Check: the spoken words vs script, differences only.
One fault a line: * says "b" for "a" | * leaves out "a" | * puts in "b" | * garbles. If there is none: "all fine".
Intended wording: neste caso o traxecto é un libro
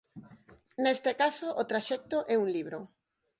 all fine